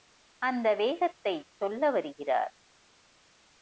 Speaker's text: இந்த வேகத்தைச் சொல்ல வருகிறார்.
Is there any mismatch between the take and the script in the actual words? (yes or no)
yes